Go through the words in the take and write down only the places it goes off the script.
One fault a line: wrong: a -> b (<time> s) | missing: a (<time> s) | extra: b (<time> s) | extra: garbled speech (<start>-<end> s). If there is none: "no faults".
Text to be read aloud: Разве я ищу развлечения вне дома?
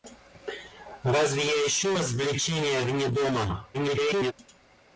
extra: garbled speech (3.7-4.3 s)